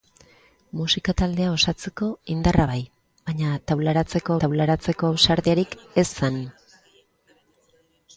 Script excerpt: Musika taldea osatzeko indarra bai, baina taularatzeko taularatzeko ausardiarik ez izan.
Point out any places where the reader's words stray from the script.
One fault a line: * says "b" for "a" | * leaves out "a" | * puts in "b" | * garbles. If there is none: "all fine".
all fine